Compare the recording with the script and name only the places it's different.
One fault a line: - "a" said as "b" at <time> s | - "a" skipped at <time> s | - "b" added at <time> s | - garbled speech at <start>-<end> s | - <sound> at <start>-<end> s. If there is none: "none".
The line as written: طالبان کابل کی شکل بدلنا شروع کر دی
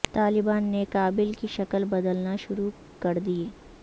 - "نے" added at 0.6 s